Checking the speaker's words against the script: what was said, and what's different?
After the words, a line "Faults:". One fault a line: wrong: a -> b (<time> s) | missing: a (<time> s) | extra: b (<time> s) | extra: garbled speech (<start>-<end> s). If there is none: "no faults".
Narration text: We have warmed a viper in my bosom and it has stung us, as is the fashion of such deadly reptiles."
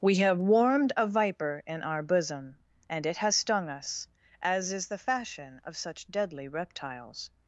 We have warmed a viper in our bosom and it has stung us, as is the fashion of such deadly reptiles."
Faults:
wrong: my -> our (1.8 s)